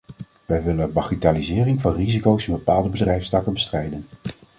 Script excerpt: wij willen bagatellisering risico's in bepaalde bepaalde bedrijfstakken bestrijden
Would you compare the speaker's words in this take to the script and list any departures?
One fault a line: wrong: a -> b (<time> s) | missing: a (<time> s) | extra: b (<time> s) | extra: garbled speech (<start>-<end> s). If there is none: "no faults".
extra: van (1.8 s)
missing: bepaalde (2.9 s)